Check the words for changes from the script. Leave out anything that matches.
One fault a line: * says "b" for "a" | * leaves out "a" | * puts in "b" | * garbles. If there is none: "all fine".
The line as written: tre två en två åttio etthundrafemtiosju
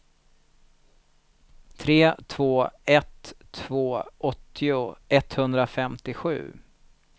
* says "ett" for "en"